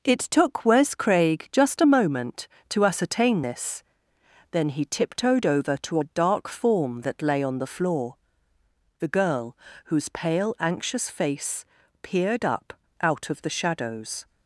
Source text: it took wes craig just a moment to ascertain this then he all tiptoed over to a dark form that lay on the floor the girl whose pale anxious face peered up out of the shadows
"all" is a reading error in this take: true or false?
true